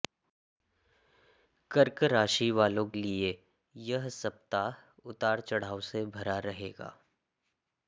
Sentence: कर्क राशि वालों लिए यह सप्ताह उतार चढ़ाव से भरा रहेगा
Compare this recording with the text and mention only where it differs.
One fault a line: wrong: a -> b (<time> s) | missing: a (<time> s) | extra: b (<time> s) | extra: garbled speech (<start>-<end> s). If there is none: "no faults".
no faults